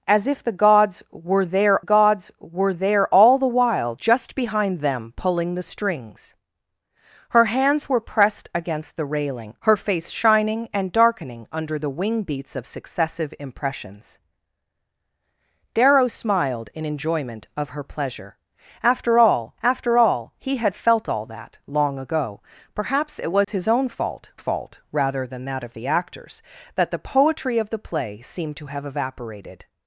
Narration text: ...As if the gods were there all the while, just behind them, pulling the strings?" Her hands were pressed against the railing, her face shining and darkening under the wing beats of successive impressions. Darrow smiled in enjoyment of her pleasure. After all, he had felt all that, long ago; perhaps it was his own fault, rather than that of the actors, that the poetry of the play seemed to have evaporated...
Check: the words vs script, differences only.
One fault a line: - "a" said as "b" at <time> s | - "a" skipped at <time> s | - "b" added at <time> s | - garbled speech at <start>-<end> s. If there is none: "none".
- "gods were there" added at 1.8 s
- "after all" added at 19.6 s
- "fault" added at 24.4 s